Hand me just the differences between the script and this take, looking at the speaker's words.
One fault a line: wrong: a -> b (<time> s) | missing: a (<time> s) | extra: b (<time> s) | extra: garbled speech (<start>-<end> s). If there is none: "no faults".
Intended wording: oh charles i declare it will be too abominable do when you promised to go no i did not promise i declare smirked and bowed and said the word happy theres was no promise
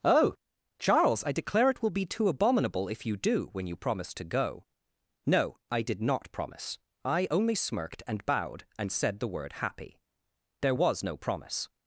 extra: if you (2.9 s)
wrong: declare -> only (7.3 s)
wrong: theres -> there (10.6 s)